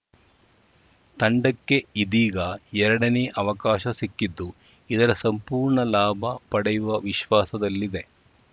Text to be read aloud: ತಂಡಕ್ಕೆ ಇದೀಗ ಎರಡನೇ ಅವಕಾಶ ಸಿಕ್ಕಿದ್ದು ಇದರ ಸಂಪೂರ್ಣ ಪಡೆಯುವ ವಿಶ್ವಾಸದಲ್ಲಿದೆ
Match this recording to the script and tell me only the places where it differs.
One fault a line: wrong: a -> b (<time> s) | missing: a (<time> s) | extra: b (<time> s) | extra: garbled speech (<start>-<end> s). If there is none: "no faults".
extra: ಲಾಭ (5.9 s)